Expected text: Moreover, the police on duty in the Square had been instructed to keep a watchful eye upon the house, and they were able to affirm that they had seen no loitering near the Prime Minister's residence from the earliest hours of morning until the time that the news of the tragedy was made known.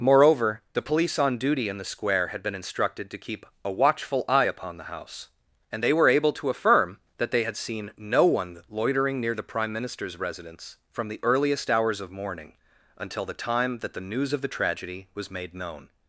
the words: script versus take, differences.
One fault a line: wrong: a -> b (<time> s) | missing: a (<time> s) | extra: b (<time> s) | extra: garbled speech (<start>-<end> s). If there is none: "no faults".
extra: one (8.2 s)